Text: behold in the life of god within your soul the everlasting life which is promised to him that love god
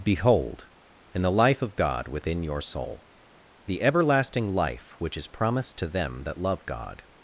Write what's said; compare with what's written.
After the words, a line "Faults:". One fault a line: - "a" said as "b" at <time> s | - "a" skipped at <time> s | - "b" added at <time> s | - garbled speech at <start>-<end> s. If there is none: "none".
behold in the life of god within your soul the everlasting life which is promised to them that love god
Faults:
- "him" said as "them" at 5.9 s